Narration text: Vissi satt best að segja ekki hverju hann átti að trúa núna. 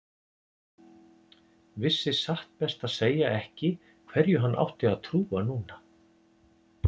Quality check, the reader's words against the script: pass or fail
pass